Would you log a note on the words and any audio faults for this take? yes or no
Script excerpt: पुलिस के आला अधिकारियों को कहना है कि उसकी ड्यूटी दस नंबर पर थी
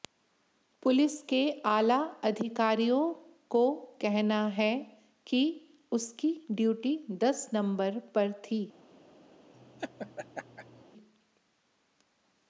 yes